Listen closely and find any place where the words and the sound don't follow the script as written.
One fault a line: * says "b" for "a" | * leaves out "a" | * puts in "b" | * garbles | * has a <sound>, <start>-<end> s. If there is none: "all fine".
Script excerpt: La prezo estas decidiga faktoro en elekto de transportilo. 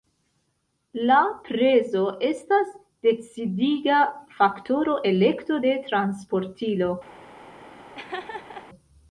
* leaves out "en"
* has a laugh, 7.9-8.7 s